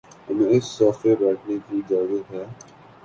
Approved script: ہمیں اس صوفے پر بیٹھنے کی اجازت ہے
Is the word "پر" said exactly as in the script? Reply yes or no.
no